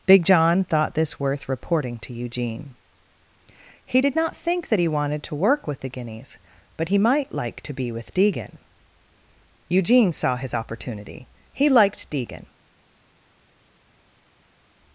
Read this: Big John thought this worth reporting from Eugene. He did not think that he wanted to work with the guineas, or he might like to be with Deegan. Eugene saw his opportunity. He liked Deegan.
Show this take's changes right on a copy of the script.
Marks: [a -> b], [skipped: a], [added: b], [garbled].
Big John thought this worth reporting [from -> to] Eugene. He did not think that he wanted to work with the guineas, [or -> but] he might like to be with Deegan. Eugene saw his opportunity. He liked Deegan.